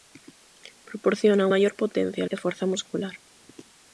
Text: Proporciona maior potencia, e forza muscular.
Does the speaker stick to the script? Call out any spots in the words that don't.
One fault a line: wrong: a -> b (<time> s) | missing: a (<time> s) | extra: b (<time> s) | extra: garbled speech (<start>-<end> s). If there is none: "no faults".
no faults